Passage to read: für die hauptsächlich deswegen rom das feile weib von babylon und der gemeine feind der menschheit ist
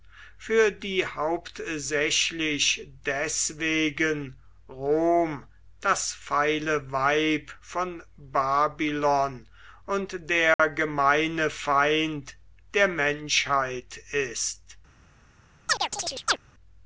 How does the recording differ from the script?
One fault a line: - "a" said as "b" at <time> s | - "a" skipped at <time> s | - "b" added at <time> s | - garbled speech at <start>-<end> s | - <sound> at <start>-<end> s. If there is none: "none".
- dropout at 10.5-10.6 s
- chirp at 15.7-16.4 s